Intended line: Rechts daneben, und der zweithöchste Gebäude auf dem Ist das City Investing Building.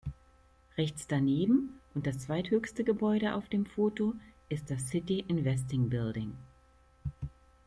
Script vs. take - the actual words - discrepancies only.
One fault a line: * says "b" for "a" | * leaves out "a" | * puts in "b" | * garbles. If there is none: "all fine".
* says "das" for "der"
* puts in "Foto"